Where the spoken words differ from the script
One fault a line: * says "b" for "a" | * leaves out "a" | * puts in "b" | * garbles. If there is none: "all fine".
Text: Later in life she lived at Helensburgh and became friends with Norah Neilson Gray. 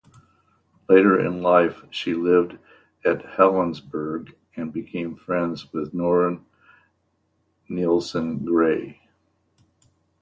all fine